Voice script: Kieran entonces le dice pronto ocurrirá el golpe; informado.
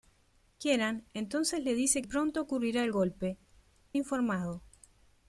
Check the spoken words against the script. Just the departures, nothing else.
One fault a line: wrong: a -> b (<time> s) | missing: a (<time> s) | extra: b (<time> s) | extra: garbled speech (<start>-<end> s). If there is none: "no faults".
no faults